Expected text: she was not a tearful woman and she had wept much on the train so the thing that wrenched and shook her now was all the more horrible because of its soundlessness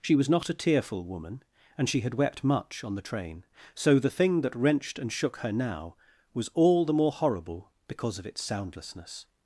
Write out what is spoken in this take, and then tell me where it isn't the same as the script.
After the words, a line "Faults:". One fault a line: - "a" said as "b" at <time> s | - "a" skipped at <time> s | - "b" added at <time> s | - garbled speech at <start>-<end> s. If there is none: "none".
she was not a tearful woman and she had wept much on the train so the thing that wrenched and shook her now was all the more horrible because of its soundlessness
Faults:
none